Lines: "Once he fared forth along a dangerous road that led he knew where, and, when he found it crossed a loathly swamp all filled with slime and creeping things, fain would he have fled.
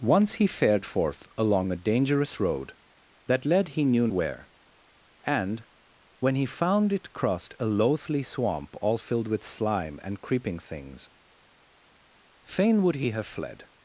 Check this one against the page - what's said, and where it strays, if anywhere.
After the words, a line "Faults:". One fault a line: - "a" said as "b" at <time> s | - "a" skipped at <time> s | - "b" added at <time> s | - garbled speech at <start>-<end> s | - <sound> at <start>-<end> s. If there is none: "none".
"Once he fared forth along a dangerous road that led he knew where, and, when he found it crossed a loathly swamp all filled with slime and creeping things, fain would he have fled.
Faults:
none